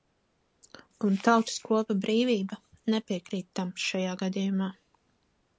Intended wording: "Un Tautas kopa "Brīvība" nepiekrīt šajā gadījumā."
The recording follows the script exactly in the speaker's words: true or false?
false